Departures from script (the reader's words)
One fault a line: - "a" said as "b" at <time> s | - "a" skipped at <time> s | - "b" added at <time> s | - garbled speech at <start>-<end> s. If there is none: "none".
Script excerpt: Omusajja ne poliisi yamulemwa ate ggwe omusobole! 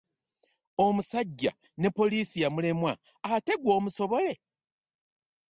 none